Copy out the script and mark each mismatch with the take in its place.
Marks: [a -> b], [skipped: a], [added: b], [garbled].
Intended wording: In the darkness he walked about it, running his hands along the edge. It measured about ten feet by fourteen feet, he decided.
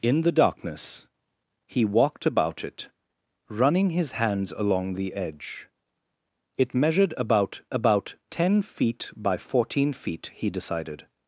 In the darkness he walked about it, running his hands along the edge. It measured about [added: about] ten feet by fourteen feet, he decided.